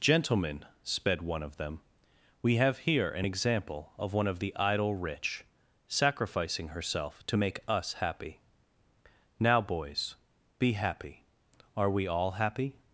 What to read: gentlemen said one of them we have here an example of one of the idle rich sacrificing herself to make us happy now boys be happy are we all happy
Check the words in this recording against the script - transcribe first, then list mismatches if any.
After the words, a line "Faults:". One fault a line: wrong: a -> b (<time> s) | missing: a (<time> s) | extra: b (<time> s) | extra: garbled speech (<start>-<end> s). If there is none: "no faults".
gentlemen sped one of them we have here an example of one of the idle rich sacrificing herself to make us happy now boys be happy are we all happy
Faults:
wrong: said -> sped (0.8 s)